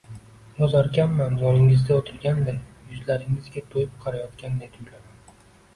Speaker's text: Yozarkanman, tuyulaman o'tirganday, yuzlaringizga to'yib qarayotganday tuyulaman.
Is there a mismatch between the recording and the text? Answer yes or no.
yes